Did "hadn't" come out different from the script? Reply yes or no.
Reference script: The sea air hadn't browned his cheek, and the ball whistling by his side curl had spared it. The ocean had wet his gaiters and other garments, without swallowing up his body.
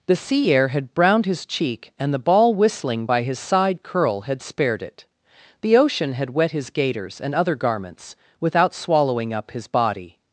yes